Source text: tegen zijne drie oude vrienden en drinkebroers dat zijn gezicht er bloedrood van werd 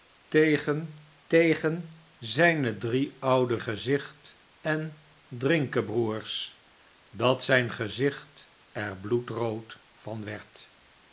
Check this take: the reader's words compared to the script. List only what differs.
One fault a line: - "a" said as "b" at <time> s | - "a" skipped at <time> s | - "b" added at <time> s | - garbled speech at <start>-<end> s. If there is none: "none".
- "tegen" added at 1.3 s
- "vrienden" said as "gezicht" at 3.6 s